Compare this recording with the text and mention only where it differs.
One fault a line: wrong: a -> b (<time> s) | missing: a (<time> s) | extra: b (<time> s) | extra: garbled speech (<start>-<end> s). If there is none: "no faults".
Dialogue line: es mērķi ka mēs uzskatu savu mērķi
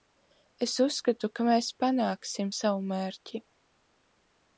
wrong: mērķi -> uzskatu (0.8 s)
wrong: uzskatu -> panāksim (1.8 s)